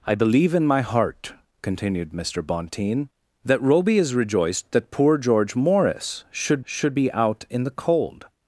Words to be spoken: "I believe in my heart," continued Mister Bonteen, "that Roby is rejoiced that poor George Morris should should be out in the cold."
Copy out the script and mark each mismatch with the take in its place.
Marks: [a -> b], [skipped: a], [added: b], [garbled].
"I believe in my heart," continued Mister Bonteen, "that Roby is rejoiced that poor George Morris should should be out in the cold."